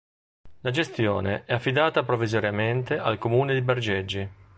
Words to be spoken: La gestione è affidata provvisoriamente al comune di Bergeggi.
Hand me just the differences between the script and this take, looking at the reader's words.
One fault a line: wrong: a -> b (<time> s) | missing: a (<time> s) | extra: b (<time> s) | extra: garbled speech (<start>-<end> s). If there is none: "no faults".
no faults